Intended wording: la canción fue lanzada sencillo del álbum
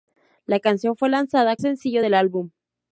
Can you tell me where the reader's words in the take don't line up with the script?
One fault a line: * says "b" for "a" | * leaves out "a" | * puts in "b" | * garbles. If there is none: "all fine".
all fine